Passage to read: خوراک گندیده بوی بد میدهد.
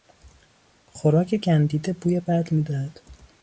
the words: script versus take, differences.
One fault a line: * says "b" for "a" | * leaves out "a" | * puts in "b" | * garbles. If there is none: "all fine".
all fine